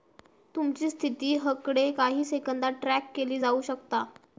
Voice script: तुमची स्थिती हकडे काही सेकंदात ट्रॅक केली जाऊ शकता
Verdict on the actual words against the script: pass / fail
pass